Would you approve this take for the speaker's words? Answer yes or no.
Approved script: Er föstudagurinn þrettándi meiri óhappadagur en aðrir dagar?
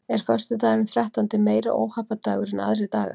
yes